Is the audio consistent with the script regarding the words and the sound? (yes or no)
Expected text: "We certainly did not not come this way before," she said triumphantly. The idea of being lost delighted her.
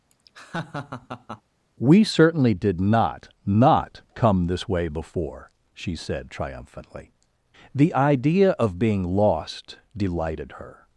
no